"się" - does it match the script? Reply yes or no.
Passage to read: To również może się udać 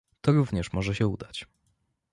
yes